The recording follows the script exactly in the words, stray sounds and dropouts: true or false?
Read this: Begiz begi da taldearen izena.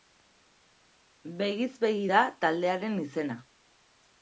true